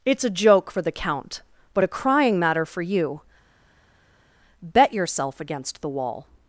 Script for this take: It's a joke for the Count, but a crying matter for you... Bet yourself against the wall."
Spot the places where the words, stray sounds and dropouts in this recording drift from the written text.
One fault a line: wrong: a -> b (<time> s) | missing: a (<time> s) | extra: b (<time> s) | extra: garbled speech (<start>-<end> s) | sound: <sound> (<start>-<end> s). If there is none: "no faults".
no faults